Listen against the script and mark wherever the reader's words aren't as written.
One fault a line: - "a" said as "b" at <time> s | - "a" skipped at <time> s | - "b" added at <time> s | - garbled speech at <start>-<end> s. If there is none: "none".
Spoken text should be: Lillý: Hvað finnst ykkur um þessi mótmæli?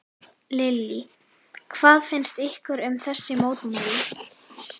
none